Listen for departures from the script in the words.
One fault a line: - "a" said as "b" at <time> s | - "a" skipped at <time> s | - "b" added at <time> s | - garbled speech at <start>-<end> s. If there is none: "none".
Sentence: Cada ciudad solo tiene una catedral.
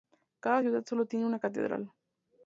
none